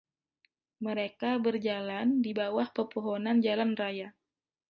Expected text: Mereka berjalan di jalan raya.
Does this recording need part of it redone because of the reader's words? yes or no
yes